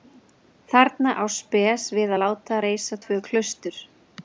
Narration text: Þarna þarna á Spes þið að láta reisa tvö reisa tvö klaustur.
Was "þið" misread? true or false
true